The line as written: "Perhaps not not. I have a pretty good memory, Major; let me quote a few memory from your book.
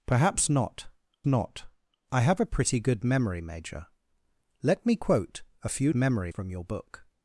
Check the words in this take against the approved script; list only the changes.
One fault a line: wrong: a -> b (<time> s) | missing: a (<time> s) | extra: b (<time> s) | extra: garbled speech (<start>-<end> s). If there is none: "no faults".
no faults